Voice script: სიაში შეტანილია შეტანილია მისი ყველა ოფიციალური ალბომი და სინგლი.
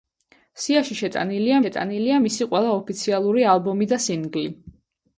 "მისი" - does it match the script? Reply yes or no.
yes